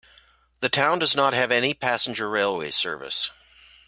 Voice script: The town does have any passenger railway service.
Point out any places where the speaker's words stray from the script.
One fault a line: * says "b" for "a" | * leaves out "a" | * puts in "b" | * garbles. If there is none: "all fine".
* puts in "not"